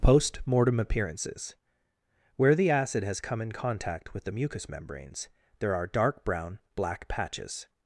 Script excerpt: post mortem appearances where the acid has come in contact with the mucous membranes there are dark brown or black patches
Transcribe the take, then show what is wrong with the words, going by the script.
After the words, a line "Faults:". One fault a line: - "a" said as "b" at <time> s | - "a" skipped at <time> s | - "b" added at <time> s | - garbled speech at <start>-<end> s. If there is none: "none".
post mortem appearances where the acid has come in contact with the mucous membranes there are dark brown black patches
Faults:
- "or" skipped at 6.6 s